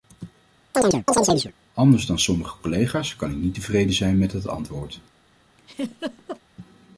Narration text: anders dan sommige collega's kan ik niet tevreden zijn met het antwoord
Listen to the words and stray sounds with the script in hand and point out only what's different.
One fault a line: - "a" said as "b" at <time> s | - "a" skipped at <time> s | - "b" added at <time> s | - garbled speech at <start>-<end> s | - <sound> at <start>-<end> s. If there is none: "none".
- chirp at 0.7-1.5 s
- laugh at 5.6-6.4 s